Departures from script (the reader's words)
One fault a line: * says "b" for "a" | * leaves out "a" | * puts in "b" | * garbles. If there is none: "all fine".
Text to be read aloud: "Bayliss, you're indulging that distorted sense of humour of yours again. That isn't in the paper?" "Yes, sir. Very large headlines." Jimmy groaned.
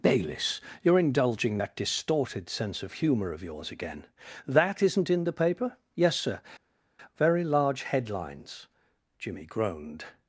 all fine